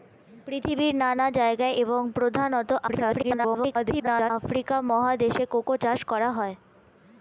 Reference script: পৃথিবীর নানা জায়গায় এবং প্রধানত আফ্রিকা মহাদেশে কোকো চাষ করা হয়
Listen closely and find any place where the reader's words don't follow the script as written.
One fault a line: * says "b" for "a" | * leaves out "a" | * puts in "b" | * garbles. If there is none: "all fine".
* garbles